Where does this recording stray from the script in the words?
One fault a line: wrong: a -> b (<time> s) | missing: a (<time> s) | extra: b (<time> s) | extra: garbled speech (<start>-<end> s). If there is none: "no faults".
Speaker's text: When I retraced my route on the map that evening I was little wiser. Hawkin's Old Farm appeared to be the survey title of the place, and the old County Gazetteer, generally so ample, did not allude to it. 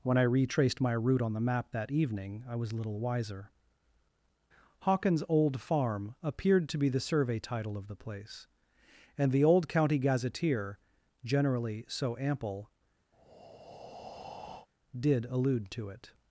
missing: not (15.3 s)